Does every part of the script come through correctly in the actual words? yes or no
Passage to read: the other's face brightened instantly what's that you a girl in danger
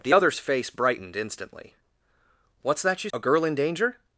yes